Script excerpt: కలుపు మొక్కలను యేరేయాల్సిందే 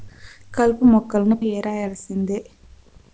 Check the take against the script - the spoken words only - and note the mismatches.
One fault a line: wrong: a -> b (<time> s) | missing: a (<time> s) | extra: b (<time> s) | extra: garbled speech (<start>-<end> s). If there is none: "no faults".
no faults